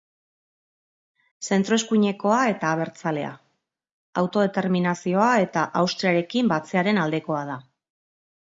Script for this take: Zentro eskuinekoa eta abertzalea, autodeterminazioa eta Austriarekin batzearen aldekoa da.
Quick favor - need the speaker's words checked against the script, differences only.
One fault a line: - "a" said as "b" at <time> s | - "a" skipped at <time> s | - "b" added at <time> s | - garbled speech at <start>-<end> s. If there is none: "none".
none